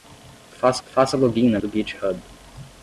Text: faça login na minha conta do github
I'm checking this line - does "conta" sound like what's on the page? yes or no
no